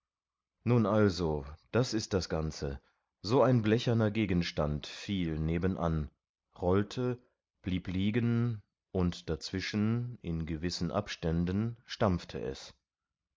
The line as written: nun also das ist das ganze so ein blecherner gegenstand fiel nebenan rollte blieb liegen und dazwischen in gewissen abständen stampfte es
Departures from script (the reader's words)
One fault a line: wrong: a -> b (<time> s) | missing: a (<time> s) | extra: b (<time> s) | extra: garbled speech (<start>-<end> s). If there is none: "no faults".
no faults